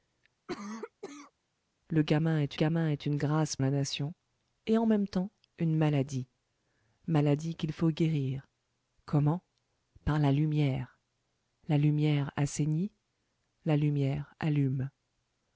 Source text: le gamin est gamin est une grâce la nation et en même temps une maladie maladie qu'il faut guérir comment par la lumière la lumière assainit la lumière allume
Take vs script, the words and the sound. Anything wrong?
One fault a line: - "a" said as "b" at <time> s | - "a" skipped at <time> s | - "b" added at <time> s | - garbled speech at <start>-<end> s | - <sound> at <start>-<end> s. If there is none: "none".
- cough at 0.5-1.3 s